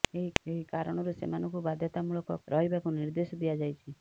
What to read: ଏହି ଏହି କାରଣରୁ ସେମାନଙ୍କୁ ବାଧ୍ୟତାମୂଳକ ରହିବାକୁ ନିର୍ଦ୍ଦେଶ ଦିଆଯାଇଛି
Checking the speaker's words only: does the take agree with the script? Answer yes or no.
yes